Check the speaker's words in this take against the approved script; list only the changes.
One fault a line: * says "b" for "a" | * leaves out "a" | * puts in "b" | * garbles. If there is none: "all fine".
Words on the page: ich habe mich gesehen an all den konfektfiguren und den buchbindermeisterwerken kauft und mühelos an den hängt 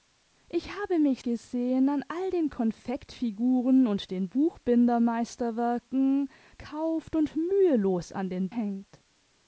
all fine